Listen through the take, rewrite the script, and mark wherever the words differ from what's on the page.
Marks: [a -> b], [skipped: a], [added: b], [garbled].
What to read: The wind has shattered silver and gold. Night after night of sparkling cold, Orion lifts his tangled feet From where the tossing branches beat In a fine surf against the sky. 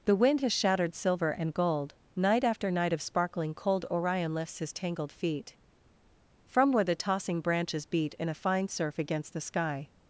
The wind has shattered silver and gold. Night after night of sparkling cold, Orion lifts his tangled feet From where the tossing branches beat In a fine surf against the sky.